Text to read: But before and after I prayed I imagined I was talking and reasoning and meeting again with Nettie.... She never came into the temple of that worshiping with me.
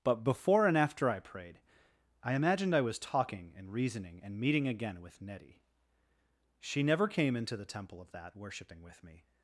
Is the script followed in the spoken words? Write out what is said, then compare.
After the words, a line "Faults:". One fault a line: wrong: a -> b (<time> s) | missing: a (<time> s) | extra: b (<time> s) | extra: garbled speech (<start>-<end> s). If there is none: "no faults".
But before and after I prayed I imagined I was talking and reasoning and meeting again with Nettie.... She never came into the temple of that worshiping with me.
Faults:
no faults